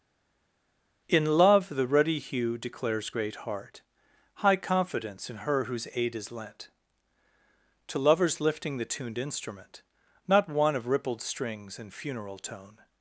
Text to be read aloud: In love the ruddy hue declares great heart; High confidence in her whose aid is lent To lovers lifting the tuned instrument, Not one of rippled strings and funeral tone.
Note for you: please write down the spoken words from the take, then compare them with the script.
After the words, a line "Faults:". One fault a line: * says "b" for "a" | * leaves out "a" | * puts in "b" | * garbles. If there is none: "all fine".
In love the ruddy hue declares great heart; High confidence in her whose aid is lent To lovers lifting the tuned instrument, Not one of rippled strings and funeral tone.
Faults:
all fine